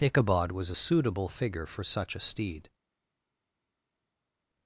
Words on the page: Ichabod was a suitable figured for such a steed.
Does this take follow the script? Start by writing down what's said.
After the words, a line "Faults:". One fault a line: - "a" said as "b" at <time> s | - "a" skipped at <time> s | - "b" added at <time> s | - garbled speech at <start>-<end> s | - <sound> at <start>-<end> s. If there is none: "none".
Ichabod was a suitable figure for such a steed.
Faults:
- "figured" said as "figure" at 1.3 s